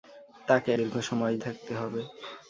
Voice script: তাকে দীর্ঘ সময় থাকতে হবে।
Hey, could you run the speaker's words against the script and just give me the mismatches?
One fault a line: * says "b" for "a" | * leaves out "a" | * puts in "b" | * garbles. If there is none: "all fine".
all fine